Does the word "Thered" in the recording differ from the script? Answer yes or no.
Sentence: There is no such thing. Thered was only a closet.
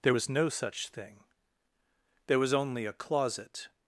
yes